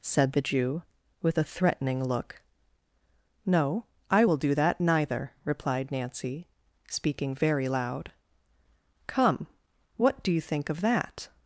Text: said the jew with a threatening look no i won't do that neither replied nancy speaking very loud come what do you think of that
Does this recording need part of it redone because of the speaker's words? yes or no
yes